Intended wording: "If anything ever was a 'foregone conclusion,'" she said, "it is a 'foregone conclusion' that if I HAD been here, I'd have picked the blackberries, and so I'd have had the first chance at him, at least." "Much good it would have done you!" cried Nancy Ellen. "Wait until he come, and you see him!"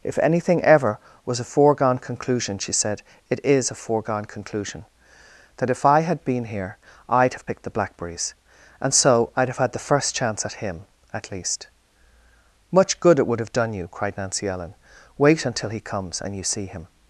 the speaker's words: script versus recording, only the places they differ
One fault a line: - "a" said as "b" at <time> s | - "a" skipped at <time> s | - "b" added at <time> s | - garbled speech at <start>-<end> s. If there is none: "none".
- "come" said as "comes" at 15.8 s